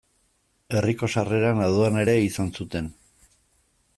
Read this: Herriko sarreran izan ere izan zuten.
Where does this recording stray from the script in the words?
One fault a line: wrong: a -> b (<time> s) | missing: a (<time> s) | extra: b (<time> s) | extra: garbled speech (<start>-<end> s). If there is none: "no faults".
wrong: izan -> aduana (1.7 s)